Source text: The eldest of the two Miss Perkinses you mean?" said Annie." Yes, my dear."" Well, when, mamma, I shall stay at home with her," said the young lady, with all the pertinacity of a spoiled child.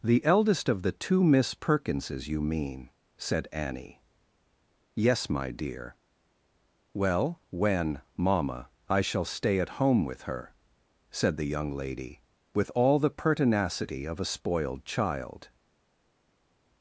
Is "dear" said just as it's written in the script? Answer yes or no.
yes